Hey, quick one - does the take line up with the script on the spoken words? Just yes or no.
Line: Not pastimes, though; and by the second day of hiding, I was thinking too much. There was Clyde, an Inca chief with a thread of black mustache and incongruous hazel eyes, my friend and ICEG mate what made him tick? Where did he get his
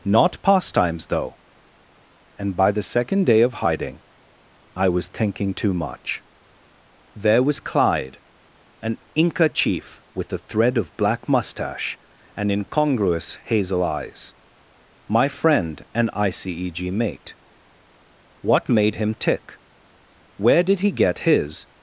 yes